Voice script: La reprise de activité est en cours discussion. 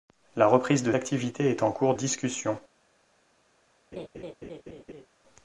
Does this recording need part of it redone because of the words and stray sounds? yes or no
yes